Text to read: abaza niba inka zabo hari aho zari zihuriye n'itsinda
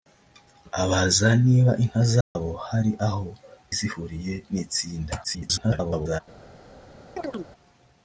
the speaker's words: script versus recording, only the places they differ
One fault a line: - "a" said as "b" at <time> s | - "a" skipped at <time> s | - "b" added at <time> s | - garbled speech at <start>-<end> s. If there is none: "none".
- "zari" skipped at 3.3 s
- garbled speech at 5.2-6.2 s